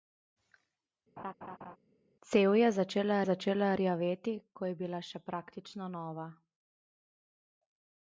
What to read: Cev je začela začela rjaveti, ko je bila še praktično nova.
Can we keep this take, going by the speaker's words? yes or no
yes